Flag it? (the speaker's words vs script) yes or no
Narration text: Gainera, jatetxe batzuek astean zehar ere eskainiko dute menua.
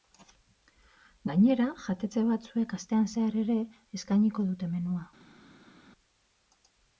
no